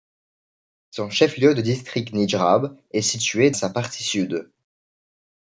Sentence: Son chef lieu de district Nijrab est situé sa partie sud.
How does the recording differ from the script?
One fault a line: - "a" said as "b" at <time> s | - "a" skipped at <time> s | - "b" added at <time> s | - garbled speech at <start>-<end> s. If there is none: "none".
none